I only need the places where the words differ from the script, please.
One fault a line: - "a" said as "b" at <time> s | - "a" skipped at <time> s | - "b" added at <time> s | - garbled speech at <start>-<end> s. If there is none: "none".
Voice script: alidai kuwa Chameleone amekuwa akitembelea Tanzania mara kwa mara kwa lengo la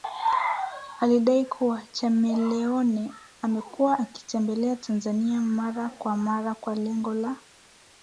none